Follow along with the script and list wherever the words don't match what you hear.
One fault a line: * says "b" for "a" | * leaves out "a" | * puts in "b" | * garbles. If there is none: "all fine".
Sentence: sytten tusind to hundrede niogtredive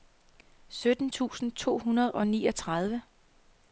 * puts in "og"